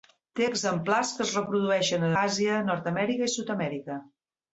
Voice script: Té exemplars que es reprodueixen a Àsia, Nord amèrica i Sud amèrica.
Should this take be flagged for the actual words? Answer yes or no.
no